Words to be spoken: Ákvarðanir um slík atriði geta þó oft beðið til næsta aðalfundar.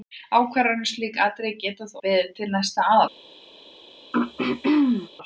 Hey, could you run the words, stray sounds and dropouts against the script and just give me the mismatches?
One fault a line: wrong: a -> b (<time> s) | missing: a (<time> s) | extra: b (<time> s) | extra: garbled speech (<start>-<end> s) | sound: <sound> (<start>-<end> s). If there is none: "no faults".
missing: oft (2.0 s)
sound: throat clearing (4.1-5.1 s)